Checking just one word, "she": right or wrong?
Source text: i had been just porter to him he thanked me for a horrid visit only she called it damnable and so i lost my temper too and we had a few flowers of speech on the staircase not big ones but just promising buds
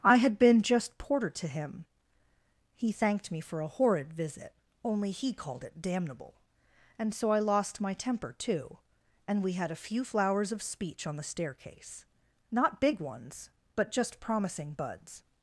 wrong